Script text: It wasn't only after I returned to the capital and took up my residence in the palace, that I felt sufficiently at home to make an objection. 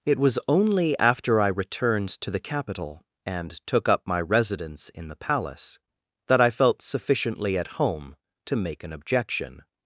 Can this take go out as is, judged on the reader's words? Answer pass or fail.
fail